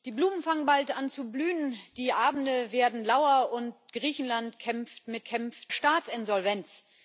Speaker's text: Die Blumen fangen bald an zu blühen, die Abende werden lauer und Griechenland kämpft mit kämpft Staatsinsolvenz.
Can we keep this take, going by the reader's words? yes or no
yes